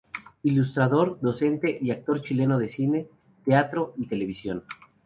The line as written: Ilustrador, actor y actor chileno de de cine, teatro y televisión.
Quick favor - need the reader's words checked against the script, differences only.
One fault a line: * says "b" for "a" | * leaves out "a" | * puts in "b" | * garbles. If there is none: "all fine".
* says "docente" for "actor"
* leaves out "de"